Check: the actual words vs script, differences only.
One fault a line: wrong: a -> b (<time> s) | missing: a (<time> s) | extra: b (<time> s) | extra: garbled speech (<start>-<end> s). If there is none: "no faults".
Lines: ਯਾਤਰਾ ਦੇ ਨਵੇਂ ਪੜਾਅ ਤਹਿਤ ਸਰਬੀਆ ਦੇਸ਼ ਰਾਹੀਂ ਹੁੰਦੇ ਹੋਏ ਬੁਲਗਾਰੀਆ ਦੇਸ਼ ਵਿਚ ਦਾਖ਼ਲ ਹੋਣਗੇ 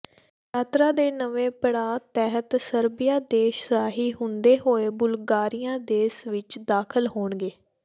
no faults